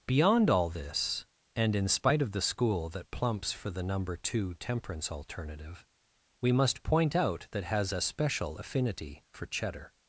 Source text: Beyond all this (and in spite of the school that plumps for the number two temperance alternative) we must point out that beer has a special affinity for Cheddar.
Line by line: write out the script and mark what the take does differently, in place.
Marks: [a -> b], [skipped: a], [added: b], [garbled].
Beyond all this (and in spite of the school that plumps for the number two temperance alternative) we must point out that [skipped: beer] has a special affinity for Cheddar.